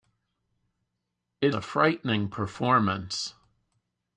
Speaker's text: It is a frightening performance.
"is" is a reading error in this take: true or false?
true